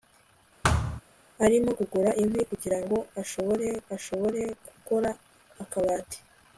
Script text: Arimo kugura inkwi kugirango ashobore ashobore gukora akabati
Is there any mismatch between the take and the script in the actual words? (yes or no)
no